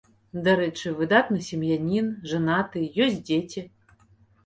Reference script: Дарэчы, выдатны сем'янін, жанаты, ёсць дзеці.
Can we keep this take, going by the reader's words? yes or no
yes